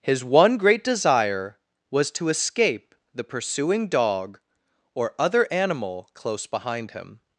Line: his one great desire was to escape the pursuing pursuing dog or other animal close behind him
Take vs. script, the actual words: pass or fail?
fail